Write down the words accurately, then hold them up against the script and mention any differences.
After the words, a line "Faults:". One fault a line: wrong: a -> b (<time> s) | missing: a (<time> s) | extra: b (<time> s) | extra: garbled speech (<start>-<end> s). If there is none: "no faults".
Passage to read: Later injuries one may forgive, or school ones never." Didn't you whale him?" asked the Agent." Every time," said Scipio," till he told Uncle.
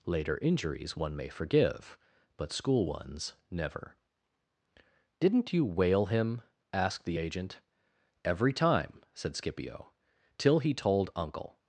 Later injuries one may forgive, but school ones never." Didn't you whale him?" asked the Agent." Every time," said Scipio," till he told Uncle.
Faults:
wrong: or -> but (2.4 s)